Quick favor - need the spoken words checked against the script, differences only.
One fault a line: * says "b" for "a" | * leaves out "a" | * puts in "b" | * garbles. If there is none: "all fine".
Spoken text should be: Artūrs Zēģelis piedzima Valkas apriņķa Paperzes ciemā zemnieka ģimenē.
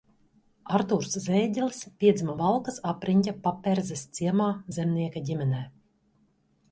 all fine